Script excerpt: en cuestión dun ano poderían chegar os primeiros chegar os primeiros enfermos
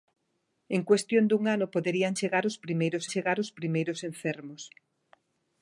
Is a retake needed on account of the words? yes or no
no